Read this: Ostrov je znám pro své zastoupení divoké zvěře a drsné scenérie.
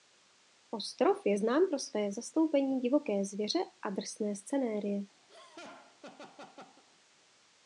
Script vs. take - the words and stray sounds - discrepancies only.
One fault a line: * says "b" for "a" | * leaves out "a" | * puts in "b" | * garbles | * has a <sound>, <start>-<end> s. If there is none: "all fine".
* has a laugh, 5.3-6.8 s